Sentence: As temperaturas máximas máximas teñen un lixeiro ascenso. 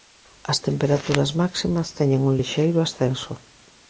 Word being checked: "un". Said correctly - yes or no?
yes